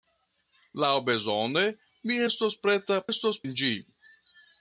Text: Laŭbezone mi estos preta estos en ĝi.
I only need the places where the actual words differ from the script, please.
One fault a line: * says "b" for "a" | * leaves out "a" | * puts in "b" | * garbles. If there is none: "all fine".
all fine